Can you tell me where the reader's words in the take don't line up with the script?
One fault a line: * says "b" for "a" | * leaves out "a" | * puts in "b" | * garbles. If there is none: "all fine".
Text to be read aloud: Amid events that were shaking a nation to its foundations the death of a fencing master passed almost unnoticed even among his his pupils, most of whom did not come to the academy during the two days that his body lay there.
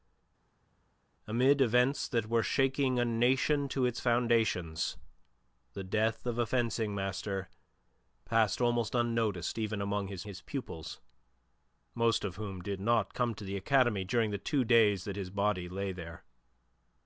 all fine